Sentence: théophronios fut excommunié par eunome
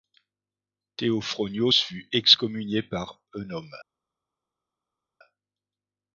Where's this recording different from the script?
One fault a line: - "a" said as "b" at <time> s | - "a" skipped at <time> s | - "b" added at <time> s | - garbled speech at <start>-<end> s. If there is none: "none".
none